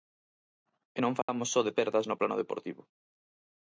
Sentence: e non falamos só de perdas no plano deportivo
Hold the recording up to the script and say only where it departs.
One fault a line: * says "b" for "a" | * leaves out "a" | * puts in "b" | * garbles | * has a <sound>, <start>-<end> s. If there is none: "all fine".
* has a dropout, 1.2-1.3 s